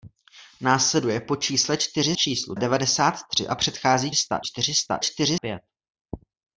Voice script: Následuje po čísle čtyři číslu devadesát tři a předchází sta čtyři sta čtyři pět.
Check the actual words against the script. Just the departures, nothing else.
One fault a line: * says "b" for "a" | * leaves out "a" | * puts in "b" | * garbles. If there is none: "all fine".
all fine